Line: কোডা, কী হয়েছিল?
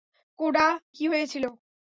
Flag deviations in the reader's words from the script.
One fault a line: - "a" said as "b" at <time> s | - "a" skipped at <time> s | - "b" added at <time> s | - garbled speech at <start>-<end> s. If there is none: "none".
none